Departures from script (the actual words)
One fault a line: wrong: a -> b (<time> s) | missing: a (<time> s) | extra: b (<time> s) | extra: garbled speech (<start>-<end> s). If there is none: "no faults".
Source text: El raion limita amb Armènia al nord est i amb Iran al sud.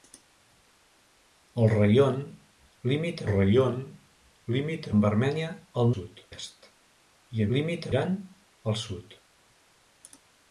extra: raion limita (3.3 s)
wrong: nord -> sud (5.9 s)
wrong: amb -> limita (7.6 s)